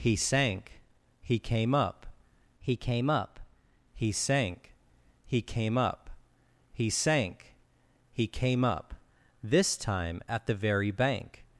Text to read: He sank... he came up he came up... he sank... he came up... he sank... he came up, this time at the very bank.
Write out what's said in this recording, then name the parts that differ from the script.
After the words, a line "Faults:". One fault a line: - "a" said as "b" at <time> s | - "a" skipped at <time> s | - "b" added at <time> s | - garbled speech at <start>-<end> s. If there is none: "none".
He sank... he came up he came up... he sank... he came up... he sank... he came up, this time at the very bank.
Faults:
none